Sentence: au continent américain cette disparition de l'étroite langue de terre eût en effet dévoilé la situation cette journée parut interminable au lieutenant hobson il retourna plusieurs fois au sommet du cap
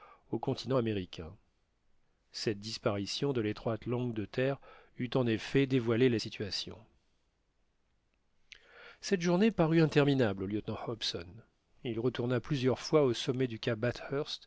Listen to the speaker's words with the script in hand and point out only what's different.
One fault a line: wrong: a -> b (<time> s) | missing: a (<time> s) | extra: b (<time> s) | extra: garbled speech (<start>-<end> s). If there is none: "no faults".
no faults